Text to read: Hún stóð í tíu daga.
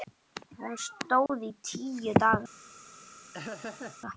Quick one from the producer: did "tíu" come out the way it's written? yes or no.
yes